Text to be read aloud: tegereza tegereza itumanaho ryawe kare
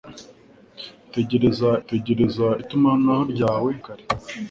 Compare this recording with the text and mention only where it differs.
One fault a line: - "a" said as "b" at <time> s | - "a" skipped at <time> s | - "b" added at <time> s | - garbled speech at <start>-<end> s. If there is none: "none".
none